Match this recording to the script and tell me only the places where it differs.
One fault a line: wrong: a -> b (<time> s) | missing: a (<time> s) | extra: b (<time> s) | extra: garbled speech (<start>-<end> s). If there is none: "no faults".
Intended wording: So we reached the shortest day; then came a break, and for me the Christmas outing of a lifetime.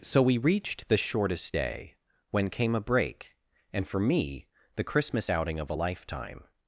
wrong: then -> when (2.3 s)